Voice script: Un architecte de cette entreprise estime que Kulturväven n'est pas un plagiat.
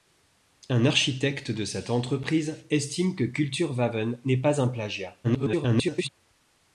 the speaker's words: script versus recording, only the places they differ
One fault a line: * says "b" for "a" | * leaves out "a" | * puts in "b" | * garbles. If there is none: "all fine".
* garbles